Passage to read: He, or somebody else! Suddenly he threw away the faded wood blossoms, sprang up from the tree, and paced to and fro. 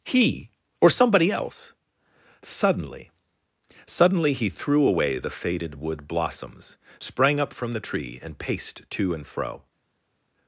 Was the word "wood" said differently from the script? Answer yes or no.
no